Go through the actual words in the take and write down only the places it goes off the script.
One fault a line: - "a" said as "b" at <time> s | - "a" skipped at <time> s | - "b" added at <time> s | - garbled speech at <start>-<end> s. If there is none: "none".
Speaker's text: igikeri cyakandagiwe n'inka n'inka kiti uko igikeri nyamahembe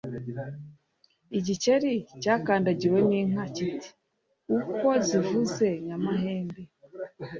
- "n'inka" skipped at 3.4 s
- "igikeri" said as "zivuze" at 5.1 s